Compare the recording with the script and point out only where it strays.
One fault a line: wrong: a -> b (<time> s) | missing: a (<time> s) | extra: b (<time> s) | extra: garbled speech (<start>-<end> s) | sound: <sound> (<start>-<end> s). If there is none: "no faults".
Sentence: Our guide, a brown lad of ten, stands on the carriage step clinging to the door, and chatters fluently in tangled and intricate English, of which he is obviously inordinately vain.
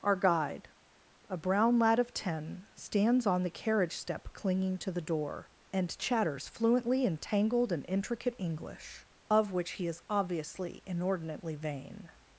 no faults